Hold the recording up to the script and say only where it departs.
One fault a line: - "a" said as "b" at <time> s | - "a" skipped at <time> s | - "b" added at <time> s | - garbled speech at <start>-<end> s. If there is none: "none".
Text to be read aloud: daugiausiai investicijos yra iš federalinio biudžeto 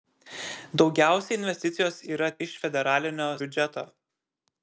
none